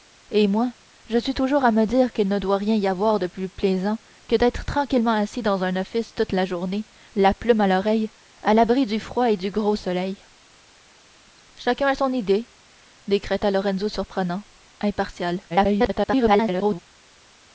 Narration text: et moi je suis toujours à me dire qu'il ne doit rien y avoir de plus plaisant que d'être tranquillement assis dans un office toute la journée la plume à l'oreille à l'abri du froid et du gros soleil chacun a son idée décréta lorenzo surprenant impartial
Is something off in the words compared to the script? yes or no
yes